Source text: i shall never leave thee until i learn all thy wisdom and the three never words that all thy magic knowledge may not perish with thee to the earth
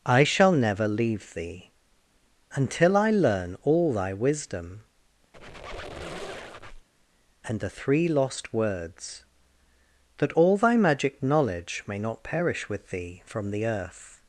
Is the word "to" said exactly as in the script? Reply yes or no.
no